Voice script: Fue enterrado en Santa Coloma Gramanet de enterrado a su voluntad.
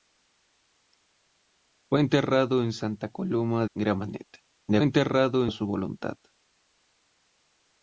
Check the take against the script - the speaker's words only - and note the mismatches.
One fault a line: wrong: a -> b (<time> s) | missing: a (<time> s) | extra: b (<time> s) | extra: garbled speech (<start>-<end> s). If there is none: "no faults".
no faults